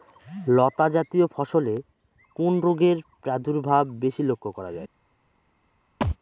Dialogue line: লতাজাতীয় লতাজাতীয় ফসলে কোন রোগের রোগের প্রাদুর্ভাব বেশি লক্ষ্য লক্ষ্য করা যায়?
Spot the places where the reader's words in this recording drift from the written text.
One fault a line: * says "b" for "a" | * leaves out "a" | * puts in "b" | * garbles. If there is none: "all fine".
* leaves out "লতাজাতীয়"
* leaves out "রোগের"
* leaves out "লক্ষ্য"